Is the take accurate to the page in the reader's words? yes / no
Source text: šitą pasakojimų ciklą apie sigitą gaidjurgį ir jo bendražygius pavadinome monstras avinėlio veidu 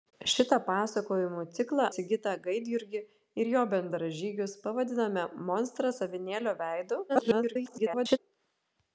no